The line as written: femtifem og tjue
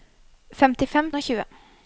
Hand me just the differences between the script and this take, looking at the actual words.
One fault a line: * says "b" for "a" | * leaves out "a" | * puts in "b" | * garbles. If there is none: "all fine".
all fine